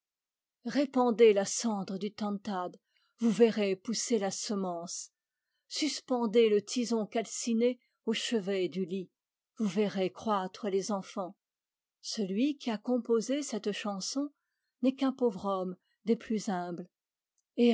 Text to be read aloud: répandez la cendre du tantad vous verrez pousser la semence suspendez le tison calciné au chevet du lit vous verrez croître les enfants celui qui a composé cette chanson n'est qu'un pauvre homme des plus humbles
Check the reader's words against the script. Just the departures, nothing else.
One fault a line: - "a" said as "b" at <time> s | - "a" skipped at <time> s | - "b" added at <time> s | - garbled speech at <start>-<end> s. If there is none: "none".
none